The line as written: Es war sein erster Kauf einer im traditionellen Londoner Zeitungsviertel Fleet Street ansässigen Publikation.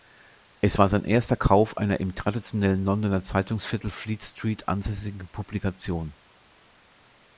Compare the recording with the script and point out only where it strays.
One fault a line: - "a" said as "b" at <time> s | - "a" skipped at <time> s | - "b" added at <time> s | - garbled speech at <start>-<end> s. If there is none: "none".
none